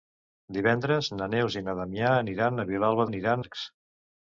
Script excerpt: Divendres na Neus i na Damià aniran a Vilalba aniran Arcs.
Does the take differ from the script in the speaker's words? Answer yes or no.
no